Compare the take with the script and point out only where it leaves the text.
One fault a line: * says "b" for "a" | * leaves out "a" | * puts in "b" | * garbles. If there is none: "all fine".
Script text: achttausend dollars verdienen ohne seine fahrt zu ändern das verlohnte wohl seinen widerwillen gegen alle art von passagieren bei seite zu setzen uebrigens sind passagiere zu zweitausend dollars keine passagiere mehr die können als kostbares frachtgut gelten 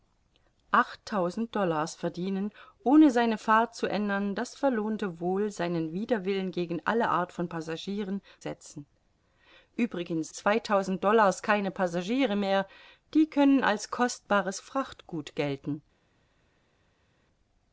* leaves out "bei seite zu"
* leaves out "sind passagiere zu"